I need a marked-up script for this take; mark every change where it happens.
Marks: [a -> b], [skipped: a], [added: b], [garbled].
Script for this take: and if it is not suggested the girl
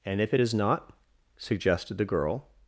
and if it is not suggested the girl